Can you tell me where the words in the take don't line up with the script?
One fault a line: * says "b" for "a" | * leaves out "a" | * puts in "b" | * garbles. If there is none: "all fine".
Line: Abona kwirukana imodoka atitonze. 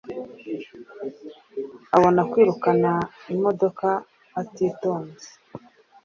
all fine